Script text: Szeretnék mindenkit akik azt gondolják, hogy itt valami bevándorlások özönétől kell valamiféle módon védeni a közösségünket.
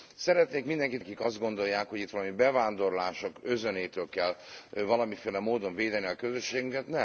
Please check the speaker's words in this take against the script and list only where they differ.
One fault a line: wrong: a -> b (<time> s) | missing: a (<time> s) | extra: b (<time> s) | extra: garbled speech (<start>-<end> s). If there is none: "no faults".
no faults